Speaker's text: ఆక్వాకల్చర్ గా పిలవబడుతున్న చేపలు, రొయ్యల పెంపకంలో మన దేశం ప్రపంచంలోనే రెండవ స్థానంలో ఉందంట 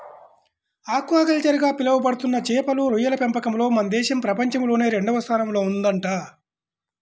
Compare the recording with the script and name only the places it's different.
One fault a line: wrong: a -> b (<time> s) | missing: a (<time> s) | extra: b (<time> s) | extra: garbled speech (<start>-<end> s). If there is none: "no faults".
no faults